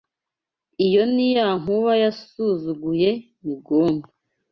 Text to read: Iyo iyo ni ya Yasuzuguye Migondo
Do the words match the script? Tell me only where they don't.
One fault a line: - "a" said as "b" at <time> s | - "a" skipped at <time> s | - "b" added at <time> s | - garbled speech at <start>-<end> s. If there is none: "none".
- "iyo" skipped at 1.0 s
- "Nkuba" added at 1.6 s